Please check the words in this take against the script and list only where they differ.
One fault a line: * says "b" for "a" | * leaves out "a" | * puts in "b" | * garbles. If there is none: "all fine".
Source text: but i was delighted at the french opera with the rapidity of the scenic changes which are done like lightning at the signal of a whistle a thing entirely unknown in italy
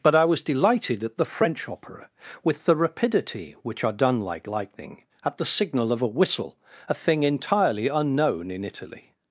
* leaves out "of the scenic changes"